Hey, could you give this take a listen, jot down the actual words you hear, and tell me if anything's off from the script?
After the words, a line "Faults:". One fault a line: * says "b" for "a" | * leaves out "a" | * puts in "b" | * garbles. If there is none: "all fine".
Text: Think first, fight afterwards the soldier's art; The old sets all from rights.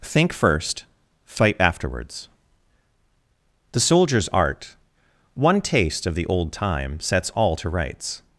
Think first, fight afterwards the soldier's art; One taste of the old time sets all to rights.
Faults:
* puts in "One taste of"
* puts in "time"
* says "to" for "from"